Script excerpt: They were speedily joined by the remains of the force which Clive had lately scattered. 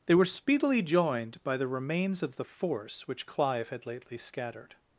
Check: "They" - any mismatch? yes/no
no